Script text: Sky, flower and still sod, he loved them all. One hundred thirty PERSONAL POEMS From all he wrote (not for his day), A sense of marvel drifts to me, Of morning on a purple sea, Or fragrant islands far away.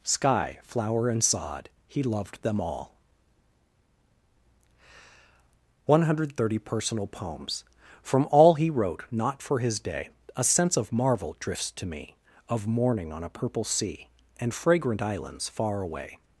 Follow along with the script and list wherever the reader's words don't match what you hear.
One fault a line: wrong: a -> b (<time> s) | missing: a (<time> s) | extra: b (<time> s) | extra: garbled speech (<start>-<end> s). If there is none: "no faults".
missing: still (1.2 s)
wrong: Or -> And (14.4 s)